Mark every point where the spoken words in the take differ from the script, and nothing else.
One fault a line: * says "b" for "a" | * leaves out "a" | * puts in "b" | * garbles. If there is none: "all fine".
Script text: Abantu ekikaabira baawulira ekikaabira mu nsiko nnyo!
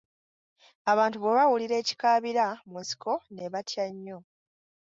* says "bwe" for "ekikaabira"
* puts in "ne batya"